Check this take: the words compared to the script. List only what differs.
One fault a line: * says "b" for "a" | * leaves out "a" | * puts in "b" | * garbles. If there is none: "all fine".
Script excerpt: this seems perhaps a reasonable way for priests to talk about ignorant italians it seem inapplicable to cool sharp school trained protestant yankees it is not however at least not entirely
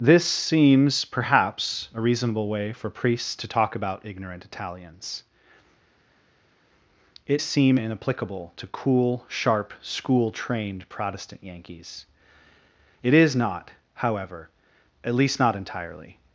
all fine